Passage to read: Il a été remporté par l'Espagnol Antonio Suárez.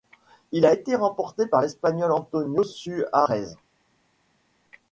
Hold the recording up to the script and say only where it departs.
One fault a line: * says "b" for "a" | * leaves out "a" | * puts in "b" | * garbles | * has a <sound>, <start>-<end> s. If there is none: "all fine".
all fine